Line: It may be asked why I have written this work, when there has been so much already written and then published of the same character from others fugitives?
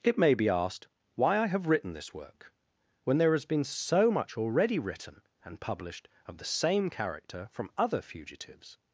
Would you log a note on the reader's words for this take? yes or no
yes